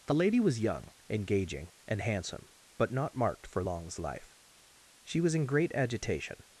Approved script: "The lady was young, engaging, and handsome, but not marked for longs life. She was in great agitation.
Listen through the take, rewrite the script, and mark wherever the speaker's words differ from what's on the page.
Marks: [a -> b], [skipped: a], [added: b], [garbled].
"The lady was young, engaging, and handsome, but not marked for longs life. She was in great agitation.